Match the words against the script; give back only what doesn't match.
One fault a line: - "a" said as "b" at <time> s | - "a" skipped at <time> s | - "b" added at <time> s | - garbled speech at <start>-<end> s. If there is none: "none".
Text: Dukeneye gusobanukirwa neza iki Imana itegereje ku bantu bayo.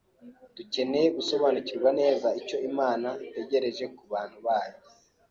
- "iki" said as "icyo" at 2.4 s